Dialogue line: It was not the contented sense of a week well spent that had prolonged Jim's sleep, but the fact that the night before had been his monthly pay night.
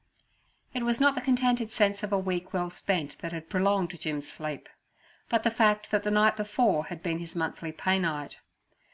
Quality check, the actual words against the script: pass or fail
pass